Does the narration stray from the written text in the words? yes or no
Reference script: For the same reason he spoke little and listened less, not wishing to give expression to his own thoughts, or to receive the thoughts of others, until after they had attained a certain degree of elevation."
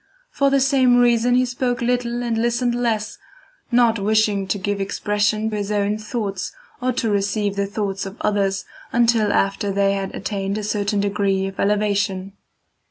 yes